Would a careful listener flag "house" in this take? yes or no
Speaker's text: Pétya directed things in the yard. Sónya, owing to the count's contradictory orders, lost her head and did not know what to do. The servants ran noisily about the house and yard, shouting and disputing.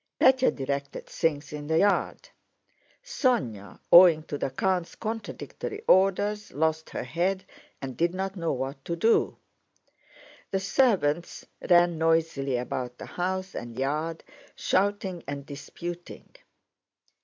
no